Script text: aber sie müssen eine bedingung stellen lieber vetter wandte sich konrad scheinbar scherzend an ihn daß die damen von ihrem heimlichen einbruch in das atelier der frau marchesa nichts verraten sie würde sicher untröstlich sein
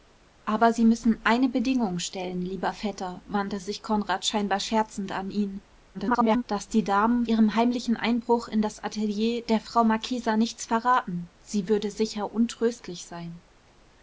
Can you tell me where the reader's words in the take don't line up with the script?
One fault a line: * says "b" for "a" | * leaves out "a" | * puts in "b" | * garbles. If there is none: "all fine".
* garbles
* leaves out "von"